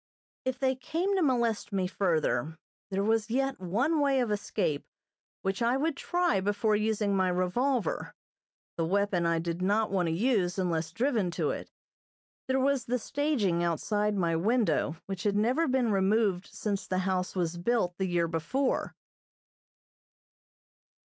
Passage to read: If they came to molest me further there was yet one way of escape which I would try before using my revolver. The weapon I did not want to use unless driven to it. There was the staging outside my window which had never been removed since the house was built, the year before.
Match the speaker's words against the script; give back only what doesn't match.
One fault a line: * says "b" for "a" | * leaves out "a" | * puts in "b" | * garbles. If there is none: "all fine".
all fine